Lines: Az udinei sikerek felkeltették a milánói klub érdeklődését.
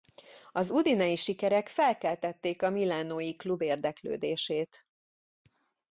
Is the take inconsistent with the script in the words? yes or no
no